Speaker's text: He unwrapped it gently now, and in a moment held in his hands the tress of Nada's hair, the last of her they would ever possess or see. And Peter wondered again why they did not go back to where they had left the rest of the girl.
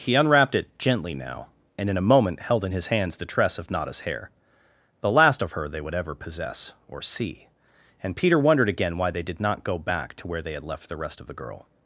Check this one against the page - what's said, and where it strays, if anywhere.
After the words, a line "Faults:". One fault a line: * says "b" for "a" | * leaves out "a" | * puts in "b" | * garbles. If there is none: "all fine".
He unwrapped it gently now, and in a moment held in his hands the tress of Nada's hair, the last of her they would ever possess or see. And Peter wondered again why they did not go back to where they had left the rest of the girl.
Faults:
all fine